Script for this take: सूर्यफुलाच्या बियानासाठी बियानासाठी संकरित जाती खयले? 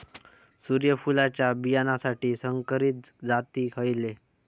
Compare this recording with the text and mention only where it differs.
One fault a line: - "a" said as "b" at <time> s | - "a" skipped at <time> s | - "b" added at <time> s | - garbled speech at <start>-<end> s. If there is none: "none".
- "बियानासाठी" skipped at 2.4 s